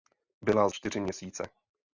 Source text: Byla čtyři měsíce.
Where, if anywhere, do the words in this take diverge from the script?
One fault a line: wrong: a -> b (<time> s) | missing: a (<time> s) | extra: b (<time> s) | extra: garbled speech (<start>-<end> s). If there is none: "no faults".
no faults